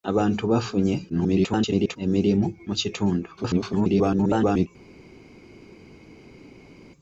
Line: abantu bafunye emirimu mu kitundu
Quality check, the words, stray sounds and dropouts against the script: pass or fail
fail